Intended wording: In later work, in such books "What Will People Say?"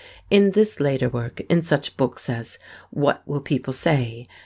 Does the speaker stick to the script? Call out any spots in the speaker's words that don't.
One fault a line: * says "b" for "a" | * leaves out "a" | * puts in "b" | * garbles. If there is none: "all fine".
* puts in "this"
* puts in "as"